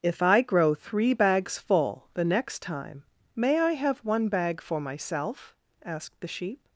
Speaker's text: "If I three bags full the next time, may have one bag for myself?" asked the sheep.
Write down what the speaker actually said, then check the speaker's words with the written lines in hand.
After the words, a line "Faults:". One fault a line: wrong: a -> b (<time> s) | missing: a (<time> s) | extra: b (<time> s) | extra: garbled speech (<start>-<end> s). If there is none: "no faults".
"If I grow three bags full the next time, may I have one bag for myself?" asked the sheep.
Faults:
extra: grow (0.4 s)
extra: I (3.6 s)